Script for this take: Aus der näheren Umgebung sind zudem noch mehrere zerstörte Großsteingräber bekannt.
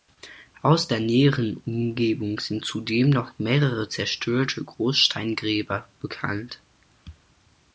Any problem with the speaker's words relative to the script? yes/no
no